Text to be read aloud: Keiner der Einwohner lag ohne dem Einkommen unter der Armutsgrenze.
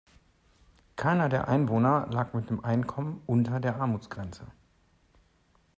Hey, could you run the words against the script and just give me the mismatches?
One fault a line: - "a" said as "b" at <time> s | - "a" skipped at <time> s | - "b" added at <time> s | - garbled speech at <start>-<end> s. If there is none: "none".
- "ohne" said as "mit" at 2.3 s